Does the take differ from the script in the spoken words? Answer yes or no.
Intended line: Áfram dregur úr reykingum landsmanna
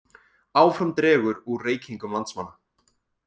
no